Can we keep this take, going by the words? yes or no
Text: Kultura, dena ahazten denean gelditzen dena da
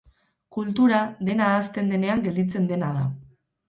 yes